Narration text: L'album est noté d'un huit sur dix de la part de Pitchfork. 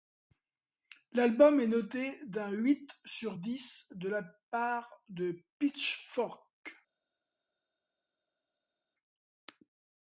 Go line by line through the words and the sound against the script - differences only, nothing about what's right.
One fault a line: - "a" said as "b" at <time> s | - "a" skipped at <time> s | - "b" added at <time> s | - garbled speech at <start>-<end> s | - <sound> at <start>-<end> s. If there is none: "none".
none